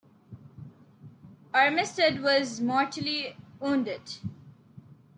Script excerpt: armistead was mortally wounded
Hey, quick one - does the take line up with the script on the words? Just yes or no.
yes